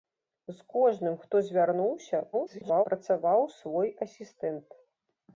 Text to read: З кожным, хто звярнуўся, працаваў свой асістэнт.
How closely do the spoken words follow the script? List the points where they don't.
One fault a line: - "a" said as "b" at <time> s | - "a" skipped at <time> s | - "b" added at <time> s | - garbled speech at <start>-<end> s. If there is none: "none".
- garbled speech at 2.3-2.9 s